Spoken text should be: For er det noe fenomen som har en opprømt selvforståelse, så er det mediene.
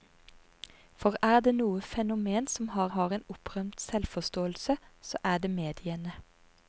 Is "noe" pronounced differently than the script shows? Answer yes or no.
no